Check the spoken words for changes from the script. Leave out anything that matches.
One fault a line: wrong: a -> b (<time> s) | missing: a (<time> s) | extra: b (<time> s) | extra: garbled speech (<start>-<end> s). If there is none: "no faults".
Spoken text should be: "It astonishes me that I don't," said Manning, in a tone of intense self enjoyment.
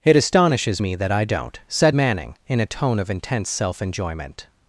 no faults